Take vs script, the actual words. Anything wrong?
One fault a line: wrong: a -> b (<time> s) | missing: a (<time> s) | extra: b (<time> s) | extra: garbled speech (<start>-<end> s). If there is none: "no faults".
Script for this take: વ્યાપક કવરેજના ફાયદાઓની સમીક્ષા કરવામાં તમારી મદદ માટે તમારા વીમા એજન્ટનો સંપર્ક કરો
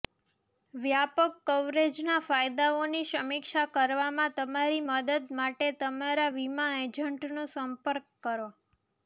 no faults